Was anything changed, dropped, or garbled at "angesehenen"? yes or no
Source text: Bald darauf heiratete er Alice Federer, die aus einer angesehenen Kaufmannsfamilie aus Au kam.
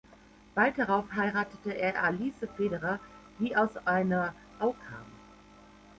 yes